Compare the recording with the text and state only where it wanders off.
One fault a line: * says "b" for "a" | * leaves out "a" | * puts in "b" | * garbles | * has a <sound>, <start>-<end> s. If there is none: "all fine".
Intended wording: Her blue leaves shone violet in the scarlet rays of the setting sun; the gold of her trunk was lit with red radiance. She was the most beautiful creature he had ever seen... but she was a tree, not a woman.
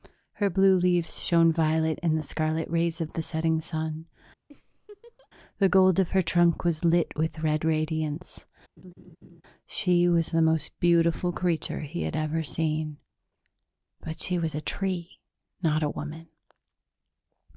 * has a laugh, 4.5-5.3 s
* has a laugh, 8.8-9.4 s